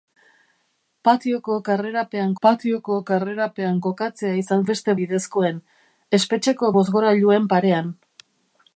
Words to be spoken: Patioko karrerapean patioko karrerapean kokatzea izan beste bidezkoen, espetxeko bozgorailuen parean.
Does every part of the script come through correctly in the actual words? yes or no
yes